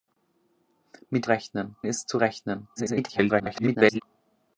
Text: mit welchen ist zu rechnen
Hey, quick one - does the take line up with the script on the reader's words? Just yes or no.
no